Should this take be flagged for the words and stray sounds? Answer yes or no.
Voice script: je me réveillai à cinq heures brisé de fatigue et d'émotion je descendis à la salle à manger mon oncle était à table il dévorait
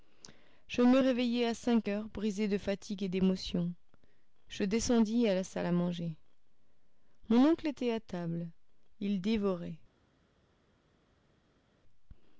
no